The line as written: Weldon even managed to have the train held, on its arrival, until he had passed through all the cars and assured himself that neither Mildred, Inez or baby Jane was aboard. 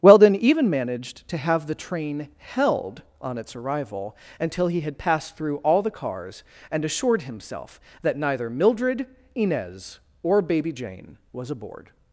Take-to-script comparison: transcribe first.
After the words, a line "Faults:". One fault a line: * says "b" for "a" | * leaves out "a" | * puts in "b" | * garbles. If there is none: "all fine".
Weldon even managed to have the train held, on its arrival, until he had passed through all the cars and assured himself that neither Mildred, Inez or baby Jane was aboard.
Faults:
all fine